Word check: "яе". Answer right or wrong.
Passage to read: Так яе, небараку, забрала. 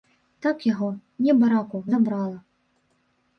wrong